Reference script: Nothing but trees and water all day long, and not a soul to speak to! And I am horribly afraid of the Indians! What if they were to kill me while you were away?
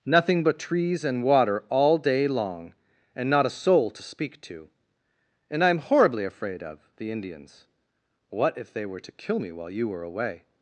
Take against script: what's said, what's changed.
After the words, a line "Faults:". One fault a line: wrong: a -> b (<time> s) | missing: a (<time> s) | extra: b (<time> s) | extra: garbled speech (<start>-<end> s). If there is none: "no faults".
Nothing but trees and water all day long, and not a soul to speak to! And I am horribly afraid of the Indians! What if they were to kill me while you were away?
Faults:
no faults